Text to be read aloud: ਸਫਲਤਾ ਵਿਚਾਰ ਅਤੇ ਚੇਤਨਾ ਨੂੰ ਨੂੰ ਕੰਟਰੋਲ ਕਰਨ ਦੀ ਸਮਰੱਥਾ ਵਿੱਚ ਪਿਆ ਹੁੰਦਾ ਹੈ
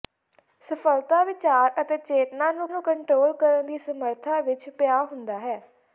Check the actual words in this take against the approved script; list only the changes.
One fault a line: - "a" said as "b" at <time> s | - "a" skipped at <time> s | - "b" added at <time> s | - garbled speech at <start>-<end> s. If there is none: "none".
none